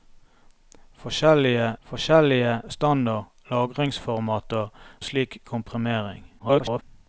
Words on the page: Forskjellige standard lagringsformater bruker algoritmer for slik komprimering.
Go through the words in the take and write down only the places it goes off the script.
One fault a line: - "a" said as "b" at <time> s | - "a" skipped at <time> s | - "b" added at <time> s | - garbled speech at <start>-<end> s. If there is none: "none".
- "forskjellige" added at 1.8 s
- "bruker algoritmer for" skipped at 4.7 s
- garbled speech at 6.4-6.8 s